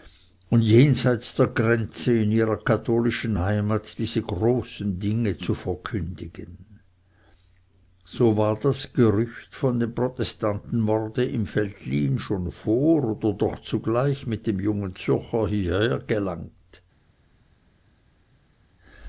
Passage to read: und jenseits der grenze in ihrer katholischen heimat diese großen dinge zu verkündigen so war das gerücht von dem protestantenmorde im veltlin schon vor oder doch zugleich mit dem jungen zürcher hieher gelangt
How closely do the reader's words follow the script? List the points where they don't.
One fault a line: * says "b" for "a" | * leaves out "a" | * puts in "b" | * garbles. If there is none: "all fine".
all fine